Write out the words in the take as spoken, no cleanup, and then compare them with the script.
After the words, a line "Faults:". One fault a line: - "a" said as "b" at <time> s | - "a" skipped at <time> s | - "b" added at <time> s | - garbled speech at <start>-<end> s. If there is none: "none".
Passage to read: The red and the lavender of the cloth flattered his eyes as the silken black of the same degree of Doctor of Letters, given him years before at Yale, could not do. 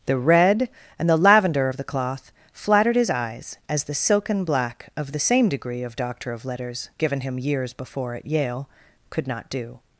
The red and the lavender of the cloth flattered his eyes as the silken black of the same degree of Doctor of Letters, given him years before at Yale, could not do.
Faults:
none